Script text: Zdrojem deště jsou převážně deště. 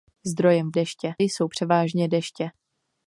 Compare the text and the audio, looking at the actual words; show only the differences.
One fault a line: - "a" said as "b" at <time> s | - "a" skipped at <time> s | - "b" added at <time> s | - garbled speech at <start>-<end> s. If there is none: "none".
none